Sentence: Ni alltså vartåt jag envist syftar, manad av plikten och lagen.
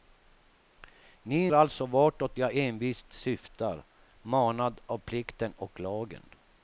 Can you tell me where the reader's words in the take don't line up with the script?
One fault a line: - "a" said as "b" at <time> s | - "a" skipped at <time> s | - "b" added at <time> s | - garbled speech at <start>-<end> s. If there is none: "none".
none